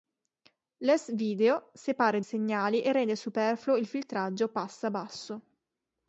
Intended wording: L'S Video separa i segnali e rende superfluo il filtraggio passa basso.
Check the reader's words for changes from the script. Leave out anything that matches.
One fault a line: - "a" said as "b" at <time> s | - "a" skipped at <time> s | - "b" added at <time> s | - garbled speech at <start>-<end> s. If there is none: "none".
none